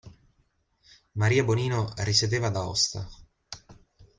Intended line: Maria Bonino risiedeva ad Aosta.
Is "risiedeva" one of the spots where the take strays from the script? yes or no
no